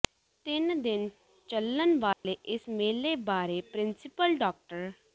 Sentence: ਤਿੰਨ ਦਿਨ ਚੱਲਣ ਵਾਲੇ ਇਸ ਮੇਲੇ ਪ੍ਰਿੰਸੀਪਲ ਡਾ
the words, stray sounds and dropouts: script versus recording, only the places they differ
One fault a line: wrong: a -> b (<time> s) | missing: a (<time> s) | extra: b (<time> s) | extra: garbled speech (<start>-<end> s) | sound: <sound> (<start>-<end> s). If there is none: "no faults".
sound: dropout (2.1-2.2 s)
extra: ਬਾਰੇ (3.2 s)